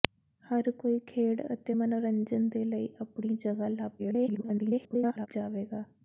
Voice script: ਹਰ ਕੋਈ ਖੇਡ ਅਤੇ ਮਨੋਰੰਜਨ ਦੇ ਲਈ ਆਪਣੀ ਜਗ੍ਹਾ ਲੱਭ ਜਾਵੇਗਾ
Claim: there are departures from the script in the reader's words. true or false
true